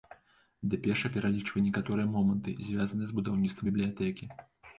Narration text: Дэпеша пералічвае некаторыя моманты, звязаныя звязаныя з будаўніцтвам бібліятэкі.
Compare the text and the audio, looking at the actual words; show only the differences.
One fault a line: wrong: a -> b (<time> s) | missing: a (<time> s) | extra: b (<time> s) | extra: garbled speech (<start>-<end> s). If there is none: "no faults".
missing: звязаныя (3.1 s)